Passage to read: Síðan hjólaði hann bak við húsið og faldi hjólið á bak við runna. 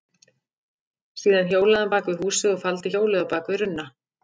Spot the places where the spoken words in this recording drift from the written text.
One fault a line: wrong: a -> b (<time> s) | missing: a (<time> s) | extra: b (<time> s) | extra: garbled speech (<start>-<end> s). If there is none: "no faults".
no faults